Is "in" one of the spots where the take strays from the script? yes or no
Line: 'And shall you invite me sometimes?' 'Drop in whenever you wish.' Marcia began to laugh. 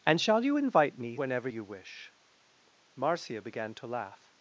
yes